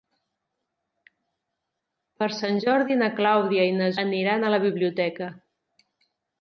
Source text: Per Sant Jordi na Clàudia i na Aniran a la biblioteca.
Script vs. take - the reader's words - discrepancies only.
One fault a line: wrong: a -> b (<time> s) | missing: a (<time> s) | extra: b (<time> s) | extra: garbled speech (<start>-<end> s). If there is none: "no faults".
no faults